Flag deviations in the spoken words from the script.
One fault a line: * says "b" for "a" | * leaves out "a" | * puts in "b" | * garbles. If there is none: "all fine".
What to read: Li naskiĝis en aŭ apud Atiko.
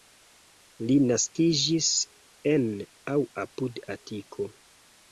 all fine